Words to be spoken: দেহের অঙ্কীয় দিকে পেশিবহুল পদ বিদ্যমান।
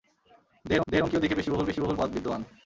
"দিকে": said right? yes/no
yes